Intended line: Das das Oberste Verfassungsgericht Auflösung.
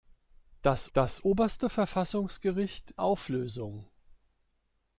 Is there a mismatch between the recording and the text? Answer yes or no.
no